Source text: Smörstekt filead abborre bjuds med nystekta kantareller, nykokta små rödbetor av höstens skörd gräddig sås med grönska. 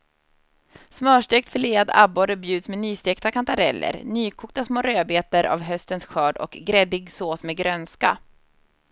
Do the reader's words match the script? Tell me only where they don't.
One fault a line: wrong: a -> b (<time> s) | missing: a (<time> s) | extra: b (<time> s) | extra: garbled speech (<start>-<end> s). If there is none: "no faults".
extra: och (6.4 s)